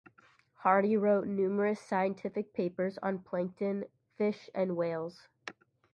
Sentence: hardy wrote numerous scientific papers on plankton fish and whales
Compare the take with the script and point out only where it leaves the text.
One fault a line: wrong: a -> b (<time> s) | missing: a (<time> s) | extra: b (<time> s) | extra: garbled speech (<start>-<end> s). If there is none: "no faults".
no faults